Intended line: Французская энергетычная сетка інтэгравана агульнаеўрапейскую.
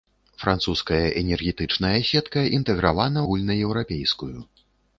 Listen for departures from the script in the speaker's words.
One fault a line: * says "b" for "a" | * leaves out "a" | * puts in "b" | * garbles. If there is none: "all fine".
all fine